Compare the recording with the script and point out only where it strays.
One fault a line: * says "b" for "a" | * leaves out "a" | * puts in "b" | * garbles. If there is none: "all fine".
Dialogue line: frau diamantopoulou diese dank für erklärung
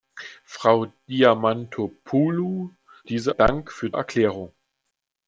all fine